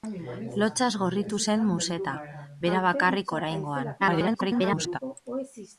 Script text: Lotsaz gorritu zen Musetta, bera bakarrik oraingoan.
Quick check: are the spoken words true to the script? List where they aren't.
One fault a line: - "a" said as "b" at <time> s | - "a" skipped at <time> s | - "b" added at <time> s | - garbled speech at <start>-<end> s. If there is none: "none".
- garbled speech at 4.0-5.0 s